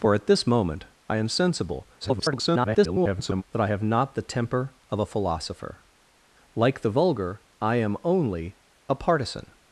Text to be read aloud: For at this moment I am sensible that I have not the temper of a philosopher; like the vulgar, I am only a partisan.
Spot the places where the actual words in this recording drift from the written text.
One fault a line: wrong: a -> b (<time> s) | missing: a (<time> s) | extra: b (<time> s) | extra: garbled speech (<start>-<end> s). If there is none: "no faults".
extra: garbled speech (2.0-3.4 s)